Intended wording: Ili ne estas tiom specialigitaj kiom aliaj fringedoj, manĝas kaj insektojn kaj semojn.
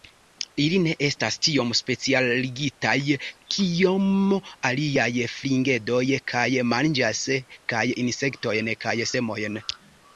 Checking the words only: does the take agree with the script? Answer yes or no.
no